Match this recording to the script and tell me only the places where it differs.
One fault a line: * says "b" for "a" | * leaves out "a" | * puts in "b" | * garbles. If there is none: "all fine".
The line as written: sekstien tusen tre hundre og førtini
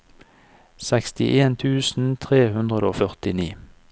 all fine